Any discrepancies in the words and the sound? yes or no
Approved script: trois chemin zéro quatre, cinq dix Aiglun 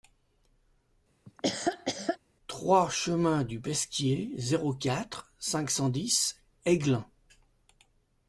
yes